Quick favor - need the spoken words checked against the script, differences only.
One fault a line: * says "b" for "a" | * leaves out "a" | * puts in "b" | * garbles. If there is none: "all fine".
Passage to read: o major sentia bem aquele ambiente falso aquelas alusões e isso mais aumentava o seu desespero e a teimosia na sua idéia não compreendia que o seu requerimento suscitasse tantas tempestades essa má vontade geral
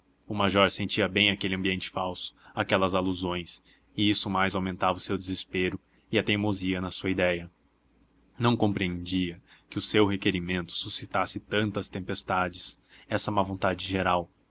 all fine